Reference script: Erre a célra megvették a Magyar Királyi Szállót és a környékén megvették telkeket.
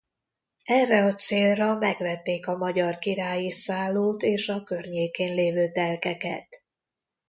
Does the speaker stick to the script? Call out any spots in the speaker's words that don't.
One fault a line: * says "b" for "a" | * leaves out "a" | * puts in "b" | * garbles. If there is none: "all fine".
* says "lévő" for "megvették"